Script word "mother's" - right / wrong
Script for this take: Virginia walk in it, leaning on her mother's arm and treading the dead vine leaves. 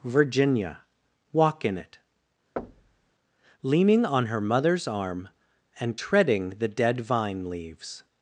right